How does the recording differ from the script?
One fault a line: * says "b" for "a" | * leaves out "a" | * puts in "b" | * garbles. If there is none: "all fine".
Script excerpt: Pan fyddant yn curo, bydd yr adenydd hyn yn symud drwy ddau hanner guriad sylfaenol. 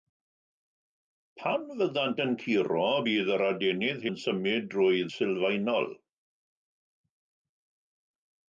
* leaves out "hyn"
* leaves out "ddau hanner guriad"